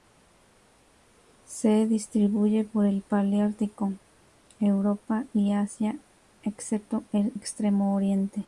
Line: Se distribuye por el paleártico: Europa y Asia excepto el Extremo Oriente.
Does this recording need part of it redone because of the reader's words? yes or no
no